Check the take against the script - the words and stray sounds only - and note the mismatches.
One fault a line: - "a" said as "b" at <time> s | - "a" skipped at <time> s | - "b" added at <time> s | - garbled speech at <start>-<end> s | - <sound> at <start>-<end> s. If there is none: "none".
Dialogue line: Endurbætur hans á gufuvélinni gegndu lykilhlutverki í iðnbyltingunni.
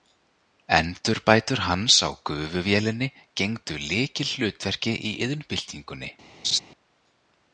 - laugh at 6.4-6.6 s